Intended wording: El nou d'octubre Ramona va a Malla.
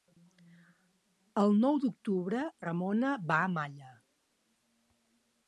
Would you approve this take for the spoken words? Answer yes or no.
yes